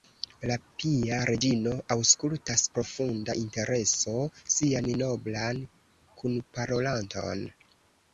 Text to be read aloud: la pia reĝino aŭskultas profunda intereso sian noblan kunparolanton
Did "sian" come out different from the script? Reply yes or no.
no